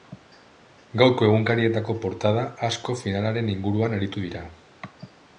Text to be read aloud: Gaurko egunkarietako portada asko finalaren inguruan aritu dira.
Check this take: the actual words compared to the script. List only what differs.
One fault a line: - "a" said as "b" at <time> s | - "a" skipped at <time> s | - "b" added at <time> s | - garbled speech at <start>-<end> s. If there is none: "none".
none